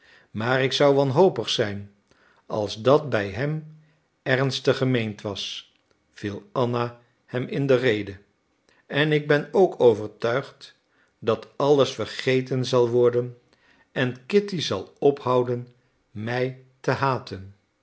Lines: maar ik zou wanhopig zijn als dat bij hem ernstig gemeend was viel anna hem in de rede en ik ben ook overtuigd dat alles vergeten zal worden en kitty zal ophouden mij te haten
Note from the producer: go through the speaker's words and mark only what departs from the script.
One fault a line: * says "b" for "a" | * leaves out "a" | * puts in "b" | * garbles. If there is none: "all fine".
all fine